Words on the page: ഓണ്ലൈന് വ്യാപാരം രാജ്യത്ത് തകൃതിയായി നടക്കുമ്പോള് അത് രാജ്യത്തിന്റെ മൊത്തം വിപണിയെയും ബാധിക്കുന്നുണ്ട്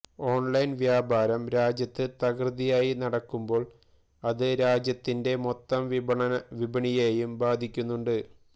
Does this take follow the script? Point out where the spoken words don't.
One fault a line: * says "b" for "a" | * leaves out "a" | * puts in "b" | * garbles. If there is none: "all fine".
all fine